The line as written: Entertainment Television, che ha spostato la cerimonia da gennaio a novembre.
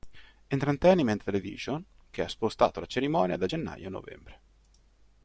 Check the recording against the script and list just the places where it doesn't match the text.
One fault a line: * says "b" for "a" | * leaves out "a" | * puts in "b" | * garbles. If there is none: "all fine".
all fine